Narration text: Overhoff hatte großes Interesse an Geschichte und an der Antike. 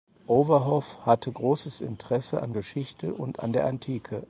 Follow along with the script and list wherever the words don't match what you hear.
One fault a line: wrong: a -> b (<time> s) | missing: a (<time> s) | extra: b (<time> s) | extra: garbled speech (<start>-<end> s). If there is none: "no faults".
no faults